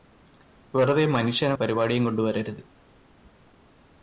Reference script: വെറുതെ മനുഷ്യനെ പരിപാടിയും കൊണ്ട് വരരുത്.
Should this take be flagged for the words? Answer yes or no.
no